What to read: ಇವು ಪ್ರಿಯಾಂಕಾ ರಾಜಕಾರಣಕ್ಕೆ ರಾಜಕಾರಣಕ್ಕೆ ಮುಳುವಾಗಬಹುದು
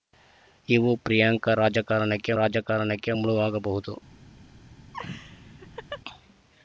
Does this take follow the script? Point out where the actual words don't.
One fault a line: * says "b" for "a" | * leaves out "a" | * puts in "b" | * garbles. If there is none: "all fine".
all fine